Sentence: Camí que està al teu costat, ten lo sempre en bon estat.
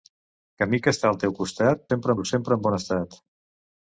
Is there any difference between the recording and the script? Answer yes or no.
yes